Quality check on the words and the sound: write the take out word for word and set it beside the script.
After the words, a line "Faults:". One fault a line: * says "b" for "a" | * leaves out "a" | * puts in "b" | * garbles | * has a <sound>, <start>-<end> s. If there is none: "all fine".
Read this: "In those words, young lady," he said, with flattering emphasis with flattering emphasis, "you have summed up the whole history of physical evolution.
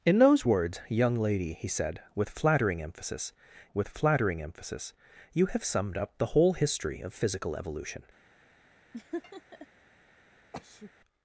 "In those words, young lady," he said, with flattering emphasis with flattering emphasis, "you have summed up the whole history of physical evolution.
Faults:
* has a laugh, 8.9-9.7 s
* has a sneeze, 10.5-10.9 s